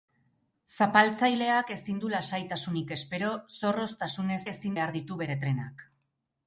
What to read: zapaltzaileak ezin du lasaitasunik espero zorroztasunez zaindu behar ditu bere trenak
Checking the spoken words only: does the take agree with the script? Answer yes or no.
no